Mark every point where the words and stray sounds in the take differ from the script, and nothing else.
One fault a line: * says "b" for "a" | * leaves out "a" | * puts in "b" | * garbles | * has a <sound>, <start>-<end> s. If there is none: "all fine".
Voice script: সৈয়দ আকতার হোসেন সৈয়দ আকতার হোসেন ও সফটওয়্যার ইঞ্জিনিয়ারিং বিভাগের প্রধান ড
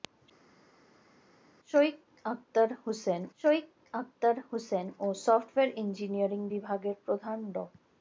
all fine